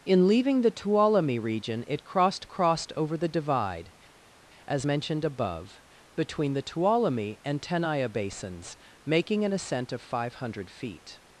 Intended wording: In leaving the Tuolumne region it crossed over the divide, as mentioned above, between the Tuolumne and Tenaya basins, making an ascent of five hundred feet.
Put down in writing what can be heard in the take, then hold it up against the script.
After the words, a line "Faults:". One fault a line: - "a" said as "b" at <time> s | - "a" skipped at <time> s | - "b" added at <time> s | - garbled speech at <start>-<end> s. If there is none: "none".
In leaving the Tuolumne region it crossed crossed over the divide, as mentioned above, between the Tuolumne and Tenaya basins, making an ascent of five hundred feet.
Faults:
- "crossed" added at 2.5 s